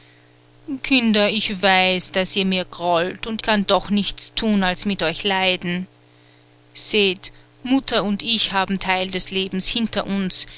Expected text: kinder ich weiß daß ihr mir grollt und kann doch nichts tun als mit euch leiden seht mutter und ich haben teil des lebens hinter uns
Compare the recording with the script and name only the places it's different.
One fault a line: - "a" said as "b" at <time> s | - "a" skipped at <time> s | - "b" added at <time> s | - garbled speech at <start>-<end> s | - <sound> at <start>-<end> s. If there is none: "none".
none